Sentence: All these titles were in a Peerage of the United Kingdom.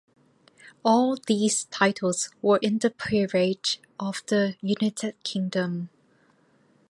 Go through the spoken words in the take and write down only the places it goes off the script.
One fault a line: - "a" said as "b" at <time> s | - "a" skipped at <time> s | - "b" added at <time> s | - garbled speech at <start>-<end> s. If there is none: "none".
- "a" said as "the" at 2.8 s